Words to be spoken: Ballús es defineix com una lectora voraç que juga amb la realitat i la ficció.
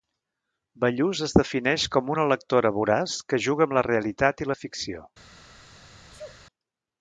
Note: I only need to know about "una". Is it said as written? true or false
true